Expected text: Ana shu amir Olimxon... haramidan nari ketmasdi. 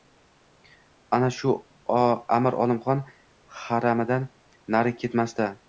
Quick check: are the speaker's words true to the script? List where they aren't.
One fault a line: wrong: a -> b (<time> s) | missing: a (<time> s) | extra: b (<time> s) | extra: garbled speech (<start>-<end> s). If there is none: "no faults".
no faults